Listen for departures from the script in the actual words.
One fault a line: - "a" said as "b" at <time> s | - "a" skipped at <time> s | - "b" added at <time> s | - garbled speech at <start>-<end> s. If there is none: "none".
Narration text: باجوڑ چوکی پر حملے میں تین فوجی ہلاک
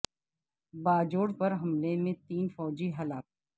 - "چوکی" skipped at 1.3 s